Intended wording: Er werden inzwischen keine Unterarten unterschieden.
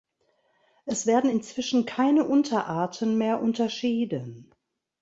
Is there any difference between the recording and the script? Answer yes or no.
yes